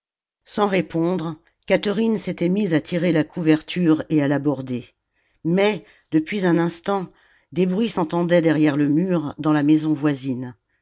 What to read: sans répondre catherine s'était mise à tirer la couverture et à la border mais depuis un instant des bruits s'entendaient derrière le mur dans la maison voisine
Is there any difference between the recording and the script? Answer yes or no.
no